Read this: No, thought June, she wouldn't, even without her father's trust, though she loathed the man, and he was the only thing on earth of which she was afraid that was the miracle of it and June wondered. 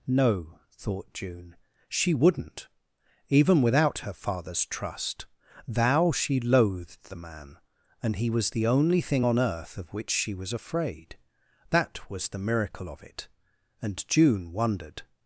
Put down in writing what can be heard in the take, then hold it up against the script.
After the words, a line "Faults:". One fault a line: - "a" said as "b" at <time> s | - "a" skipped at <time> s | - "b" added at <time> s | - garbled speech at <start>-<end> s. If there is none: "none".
No, thought June, she wouldn't, even without her father's trust, thou she loathed the man, and he was the only thing on earth of which she was afraid that was the miracle of it and June wondered.
Faults:
- "though" said as "thou" at 5.7 s